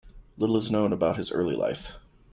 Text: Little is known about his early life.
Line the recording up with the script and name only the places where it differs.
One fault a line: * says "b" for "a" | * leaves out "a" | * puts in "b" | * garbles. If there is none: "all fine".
all fine